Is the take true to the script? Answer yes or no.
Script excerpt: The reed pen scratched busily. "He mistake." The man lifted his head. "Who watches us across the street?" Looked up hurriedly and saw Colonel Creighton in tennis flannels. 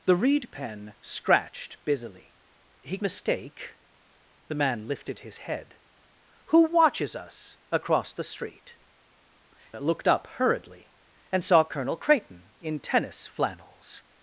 yes